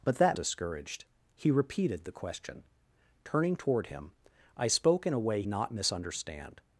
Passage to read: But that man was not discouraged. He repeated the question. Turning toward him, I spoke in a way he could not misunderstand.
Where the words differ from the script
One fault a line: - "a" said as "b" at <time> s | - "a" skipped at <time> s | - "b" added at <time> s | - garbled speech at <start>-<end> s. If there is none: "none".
- "man was not" skipped at 0.4 s
- "he could" skipped at 5.4 s